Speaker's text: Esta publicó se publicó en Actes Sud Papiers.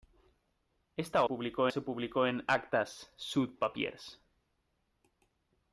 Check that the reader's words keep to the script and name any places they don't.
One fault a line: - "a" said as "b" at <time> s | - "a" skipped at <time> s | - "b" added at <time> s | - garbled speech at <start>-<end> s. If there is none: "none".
none